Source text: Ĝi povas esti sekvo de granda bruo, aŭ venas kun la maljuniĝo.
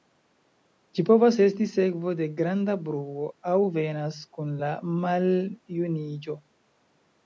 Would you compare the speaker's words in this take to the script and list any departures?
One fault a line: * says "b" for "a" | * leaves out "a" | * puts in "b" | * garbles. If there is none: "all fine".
all fine